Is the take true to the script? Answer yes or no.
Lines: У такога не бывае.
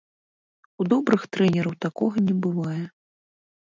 no